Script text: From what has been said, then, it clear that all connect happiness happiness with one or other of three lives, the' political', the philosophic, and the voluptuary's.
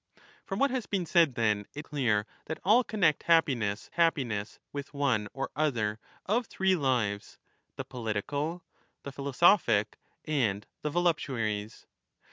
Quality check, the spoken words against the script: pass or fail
pass